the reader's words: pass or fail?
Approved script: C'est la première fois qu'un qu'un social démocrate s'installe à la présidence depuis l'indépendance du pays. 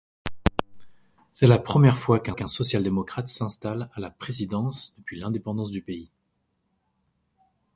pass